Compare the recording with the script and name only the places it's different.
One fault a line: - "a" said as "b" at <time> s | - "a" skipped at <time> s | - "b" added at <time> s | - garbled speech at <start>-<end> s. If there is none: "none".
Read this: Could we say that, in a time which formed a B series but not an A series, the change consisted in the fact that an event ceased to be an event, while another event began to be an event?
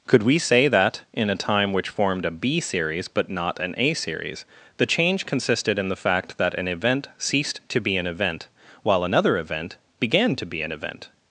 none